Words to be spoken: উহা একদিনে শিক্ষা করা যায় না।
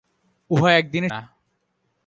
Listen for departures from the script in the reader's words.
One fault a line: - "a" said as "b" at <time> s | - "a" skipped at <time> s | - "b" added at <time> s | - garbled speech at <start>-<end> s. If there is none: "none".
- "শিক্ষা করা যায়" skipped at 1.1 s